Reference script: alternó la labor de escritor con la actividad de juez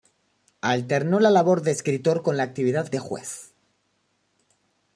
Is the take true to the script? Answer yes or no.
yes